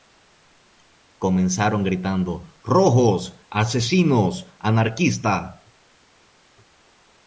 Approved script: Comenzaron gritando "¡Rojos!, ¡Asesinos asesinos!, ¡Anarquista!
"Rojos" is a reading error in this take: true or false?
false